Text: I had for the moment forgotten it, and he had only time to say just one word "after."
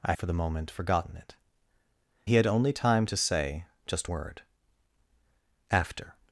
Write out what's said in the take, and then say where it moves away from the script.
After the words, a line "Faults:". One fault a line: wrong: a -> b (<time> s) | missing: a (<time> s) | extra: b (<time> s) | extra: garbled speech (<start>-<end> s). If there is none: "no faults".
I for the moment forgotten it, he had only time to say just word "after."
Faults:
missing: had (0.1 s)
missing: and (1.3 s)
missing: one (4.1 s)